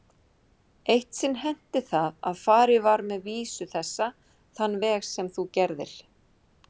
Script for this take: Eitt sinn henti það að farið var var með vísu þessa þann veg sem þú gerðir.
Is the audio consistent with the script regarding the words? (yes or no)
no